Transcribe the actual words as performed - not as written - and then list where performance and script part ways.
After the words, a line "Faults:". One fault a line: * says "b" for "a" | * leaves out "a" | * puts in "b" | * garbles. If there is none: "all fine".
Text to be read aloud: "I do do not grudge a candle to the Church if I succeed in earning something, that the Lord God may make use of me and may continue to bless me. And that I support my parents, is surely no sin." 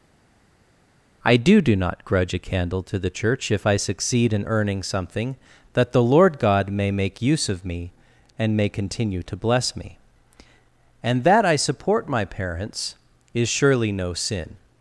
"I do do not grudge a candle to the Church if I succeed in earning something, that the Lord God may make use of me and may continue to bless me. And that I support my parents, is surely no sin."
Faults:
all fine